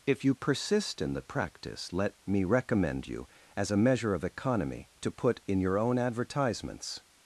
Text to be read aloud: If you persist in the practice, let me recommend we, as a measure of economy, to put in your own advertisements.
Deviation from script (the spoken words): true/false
true